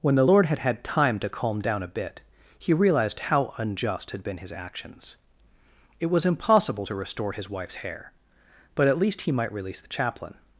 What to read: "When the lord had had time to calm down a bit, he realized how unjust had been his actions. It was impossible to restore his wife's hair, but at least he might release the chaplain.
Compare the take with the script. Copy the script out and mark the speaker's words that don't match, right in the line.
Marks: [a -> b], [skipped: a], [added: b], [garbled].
"When the lord had had time to calm down a bit, he realized how unjust had been his actions. It was impossible to restore his wife's hair, but at least he might release the chaplain.